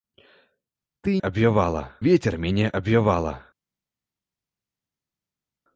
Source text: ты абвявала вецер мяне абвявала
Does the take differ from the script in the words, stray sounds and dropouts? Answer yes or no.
no